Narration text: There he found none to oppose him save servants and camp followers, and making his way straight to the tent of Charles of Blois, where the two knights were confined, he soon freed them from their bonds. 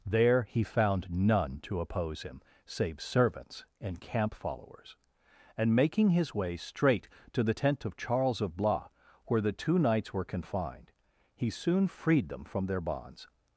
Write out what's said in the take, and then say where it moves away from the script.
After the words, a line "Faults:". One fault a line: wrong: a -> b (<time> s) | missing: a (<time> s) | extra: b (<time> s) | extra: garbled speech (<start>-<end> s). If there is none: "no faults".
There he found none to oppose him save servants and camp followers, and making his way straight to the tent of Charles of Blois, where the two knights were confined, he soon freed them from their bonds.
Faults:
no faults